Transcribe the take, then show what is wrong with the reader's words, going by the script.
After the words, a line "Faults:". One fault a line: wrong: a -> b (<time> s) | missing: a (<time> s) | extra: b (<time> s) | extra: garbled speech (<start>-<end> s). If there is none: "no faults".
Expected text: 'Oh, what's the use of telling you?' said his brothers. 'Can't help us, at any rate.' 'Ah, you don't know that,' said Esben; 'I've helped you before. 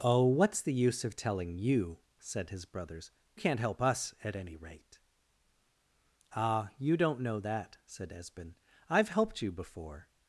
'Oh, what's the use of telling you?' said his brothers. 'Can't help us, at any rate.' 'Ah, you don't know that,' said Esben; 'I've helped you before.
Faults:
no faults